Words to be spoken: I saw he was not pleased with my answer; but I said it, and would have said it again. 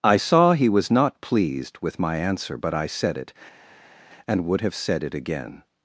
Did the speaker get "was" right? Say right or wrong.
right